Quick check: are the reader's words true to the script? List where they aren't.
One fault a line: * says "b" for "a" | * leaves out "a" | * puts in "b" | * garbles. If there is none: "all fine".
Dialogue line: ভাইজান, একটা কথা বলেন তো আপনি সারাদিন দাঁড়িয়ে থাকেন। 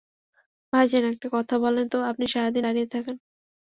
all fine